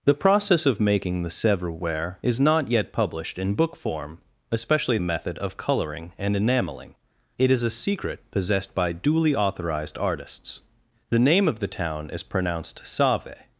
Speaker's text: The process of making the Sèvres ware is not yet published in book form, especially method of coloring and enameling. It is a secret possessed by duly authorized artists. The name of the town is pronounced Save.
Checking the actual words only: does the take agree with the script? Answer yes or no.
yes